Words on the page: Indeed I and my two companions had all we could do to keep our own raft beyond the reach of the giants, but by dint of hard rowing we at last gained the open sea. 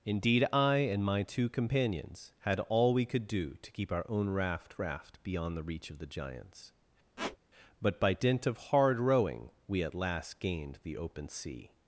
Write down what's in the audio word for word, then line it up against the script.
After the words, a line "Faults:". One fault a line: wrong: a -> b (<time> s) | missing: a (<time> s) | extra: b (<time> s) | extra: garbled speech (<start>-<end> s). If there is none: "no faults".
Indeed I and my two companions had all we could do to keep our own raft raft beyond the reach of the giants, but by dint of hard rowing we at last gained the open sea.
Faults:
extra: raft (4.8 s)